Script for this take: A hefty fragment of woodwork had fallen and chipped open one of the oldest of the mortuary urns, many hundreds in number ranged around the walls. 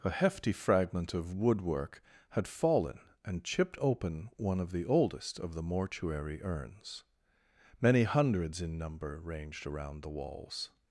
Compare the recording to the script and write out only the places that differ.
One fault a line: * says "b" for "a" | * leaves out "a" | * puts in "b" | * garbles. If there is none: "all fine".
all fine